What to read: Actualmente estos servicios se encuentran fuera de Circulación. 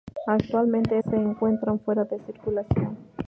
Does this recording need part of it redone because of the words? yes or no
yes